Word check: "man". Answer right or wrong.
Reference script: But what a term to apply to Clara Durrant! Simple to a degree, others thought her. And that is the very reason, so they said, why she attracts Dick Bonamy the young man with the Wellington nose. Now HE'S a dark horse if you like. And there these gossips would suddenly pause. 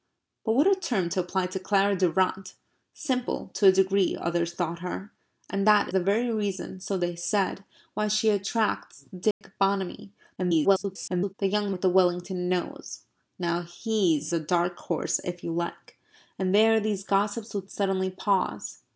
wrong